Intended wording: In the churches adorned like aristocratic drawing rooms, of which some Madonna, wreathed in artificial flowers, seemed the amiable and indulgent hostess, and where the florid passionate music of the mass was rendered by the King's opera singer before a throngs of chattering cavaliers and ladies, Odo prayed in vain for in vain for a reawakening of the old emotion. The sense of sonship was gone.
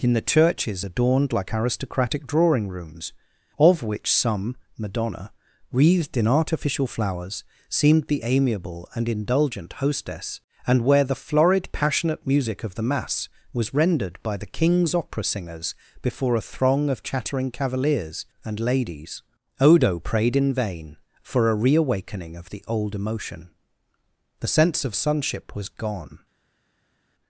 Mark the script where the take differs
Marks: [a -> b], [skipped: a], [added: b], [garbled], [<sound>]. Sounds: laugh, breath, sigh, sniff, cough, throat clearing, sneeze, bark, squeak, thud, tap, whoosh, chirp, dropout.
In the churches adorned like aristocratic drawing rooms, of which some Madonna, wreathed in artificial flowers, seemed the amiable and indulgent hostess, and where the florid passionate music of the mass was rendered by the King's opera [singer -> singers] before a [throngs -> throng] of chattering cavaliers and ladies, Odo prayed in vain for [skipped: in vain for] a reawakening of the old emotion. The sense of sonship was gone.